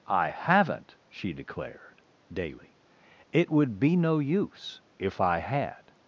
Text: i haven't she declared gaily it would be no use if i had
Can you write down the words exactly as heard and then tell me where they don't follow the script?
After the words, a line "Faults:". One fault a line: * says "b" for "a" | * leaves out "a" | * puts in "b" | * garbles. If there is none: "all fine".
i haven't she declared daily it would be no use if i had
Faults:
* says "daily" for "gaily"